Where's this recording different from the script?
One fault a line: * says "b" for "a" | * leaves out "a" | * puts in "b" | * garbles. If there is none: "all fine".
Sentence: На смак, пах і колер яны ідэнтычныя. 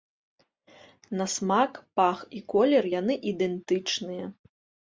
all fine